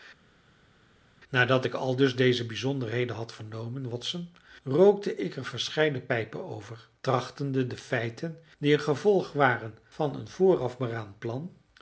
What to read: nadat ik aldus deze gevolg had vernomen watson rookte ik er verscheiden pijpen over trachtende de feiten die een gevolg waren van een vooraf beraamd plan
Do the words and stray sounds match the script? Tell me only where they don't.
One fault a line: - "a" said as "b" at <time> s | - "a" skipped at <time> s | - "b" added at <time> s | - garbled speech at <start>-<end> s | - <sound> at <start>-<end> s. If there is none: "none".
- "gevolg" said as "bijzonderheden" at 2.5 s